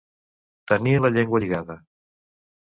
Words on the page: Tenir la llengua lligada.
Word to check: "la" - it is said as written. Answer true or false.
true